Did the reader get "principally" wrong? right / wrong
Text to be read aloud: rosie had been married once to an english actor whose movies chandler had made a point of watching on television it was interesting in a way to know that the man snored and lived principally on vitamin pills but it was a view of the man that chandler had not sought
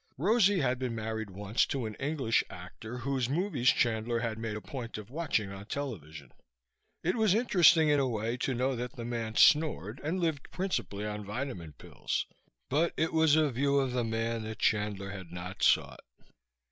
right